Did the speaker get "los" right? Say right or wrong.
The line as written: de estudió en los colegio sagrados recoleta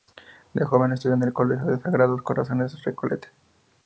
wrong